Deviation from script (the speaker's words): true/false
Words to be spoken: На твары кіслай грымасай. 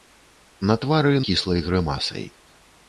false